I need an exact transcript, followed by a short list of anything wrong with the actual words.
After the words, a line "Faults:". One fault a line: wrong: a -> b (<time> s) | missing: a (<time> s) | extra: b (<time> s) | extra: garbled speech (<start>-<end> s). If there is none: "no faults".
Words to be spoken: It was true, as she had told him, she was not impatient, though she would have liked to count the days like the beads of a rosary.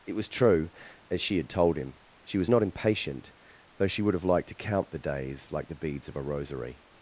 It was true, as she had told him, she was not impatient, though she would have liked to count the days like the beads of a rosary.
Faults:
no faults